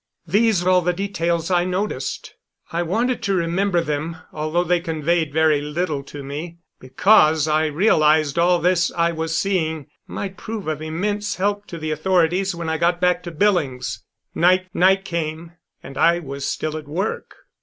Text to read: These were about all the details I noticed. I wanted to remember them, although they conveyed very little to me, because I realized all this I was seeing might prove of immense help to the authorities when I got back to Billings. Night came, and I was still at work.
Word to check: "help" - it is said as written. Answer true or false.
true